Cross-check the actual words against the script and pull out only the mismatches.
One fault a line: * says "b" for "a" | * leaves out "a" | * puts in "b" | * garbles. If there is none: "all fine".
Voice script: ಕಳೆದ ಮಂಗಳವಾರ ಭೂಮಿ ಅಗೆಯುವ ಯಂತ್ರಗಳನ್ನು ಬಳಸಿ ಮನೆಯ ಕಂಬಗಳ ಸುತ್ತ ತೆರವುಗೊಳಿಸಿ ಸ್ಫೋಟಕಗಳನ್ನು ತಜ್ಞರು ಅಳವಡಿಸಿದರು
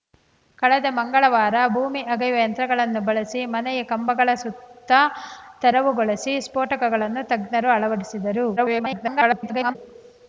* garbles